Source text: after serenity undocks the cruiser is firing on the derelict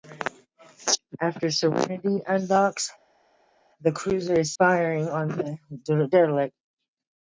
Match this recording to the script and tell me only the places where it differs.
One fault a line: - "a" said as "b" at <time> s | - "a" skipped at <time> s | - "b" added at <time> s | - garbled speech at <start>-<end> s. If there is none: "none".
none